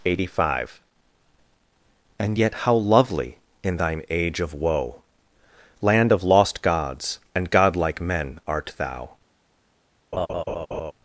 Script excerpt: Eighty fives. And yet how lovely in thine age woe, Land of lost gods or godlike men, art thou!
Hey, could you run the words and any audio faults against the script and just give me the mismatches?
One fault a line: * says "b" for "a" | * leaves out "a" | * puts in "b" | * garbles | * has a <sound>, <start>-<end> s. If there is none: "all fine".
* says "five" for "fives"
* puts in "of"
* says "and" for "or"
* has a laugh, 10.1-10.9 s